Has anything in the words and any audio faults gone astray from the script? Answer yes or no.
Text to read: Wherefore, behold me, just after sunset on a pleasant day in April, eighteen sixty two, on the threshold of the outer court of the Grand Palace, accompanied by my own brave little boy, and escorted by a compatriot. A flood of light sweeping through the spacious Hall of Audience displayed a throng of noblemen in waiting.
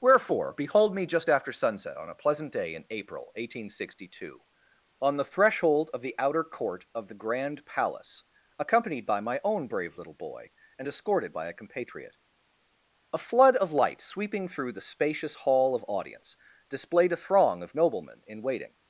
no